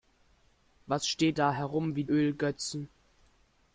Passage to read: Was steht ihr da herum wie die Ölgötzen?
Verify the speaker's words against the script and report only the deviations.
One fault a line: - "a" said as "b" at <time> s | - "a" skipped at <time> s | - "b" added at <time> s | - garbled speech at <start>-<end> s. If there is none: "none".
- "ihr" skipped at 1.4 s
- "die" skipped at 2.0 s